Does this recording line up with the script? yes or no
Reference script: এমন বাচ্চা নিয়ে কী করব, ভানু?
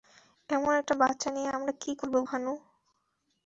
no